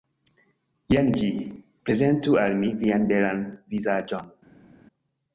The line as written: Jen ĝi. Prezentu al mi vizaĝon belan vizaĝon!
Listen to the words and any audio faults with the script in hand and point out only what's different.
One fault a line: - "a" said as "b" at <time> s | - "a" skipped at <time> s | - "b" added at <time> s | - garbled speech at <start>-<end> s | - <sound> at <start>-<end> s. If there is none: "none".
- "vizaĝon" said as "vian" at 2.8 s